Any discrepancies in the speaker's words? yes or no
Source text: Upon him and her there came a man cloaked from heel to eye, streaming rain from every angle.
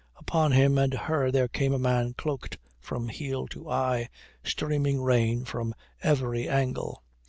no